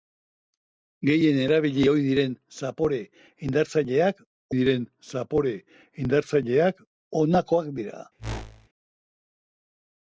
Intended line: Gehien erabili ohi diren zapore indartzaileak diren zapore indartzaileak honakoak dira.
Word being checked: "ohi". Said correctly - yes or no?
yes